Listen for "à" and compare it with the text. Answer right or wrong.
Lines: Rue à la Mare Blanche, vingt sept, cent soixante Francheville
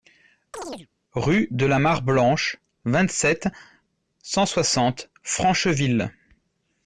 wrong